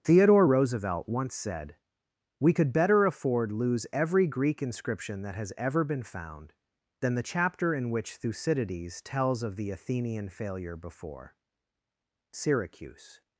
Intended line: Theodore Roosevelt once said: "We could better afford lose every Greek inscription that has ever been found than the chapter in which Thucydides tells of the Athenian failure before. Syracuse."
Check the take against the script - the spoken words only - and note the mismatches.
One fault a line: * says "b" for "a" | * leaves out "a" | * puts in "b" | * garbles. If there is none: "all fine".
all fine